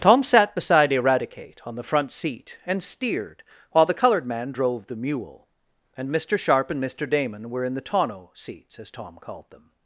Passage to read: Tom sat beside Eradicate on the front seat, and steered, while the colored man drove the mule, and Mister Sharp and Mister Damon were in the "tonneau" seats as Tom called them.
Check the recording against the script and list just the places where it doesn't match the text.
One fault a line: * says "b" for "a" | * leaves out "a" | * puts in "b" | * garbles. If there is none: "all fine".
all fine